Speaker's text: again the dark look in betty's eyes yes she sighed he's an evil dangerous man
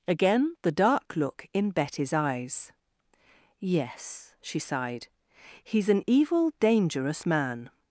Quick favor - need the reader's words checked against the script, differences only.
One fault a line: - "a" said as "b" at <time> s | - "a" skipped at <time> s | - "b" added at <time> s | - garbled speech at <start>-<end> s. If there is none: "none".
none